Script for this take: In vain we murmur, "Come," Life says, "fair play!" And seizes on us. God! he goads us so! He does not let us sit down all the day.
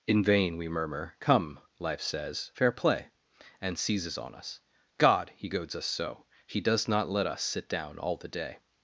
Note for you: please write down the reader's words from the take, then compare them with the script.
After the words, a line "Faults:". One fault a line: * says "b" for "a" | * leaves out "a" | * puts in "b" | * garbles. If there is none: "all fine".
In vain we murmur, "Come," Life says, "fair play!" And seizes on us. God! he goads us so! He does not let us sit down all the day.
Faults:
all fine